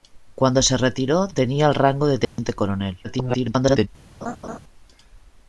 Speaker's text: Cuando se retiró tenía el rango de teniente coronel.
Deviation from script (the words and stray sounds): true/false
true